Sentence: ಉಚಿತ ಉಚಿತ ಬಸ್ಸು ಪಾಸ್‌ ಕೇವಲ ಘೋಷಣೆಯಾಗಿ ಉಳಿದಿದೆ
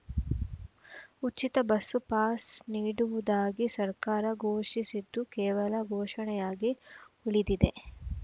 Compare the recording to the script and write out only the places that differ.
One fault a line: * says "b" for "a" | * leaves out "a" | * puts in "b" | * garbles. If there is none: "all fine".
* leaves out "ಉಚಿತ"
* puts in "ನೀಡುವುದಾಗಿ ಸರ್ಕಾರ ಘೋಷಿಸಿದ್ದು"